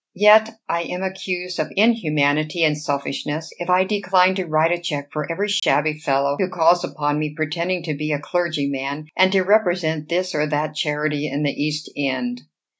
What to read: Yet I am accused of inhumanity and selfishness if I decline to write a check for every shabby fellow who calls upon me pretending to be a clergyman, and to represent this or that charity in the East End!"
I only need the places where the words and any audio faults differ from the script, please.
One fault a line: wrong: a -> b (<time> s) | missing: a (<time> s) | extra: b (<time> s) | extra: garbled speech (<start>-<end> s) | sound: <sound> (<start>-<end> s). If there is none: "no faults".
sound: dropout (5.6-5.6 s)